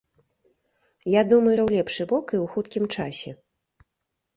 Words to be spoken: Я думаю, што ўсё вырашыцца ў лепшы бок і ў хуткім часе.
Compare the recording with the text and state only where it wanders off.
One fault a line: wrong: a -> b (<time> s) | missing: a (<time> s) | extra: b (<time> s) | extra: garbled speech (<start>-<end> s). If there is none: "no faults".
missing: што ўсё вырашыцца (1.5 s)